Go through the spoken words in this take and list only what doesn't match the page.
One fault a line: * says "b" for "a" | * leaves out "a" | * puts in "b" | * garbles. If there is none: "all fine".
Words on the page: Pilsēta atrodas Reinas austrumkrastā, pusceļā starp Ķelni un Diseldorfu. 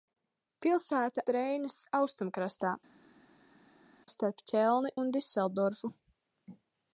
* leaves out "atrodas"
* leaves out "pusceļā"